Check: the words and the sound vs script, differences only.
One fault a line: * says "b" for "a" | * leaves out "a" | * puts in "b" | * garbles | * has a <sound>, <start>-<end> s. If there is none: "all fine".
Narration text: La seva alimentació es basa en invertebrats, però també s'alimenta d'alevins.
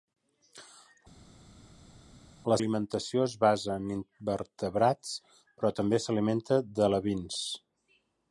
* leaves out "seva"